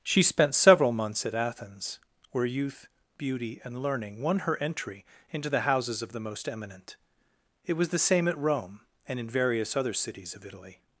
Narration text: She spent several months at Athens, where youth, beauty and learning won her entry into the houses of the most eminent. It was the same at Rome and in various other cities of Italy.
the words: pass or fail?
pass